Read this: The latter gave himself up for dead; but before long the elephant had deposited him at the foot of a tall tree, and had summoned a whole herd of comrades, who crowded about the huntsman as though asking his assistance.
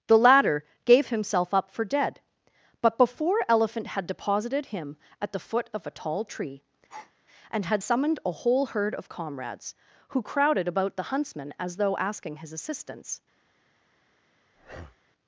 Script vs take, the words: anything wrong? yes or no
yes